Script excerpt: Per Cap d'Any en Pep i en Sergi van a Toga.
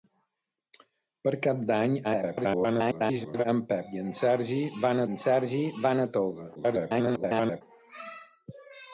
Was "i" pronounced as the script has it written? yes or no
yes